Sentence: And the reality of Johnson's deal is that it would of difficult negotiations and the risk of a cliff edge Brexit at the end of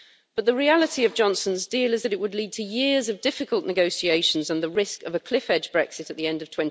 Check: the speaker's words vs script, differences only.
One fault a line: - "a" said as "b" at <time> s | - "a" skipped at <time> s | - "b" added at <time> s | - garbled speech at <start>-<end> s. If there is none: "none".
- "And" said as "But" at 0.3 s
- "lead to years" added at 2.3 s